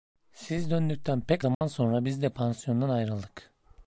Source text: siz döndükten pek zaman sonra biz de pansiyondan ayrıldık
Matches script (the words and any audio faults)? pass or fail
fail